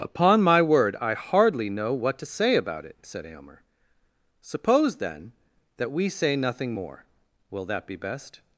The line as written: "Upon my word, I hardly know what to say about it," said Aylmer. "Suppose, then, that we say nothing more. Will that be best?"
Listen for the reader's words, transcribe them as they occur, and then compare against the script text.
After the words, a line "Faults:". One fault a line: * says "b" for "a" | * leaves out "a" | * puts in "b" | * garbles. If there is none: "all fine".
"Upon my word, I hardly know what to say about it," said Aylmer. "Suppose, then, that we say nothing more. Will that be best?"
Faults:
all fine